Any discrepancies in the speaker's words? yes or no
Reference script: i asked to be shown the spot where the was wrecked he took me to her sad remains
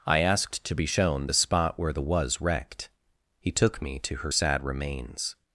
no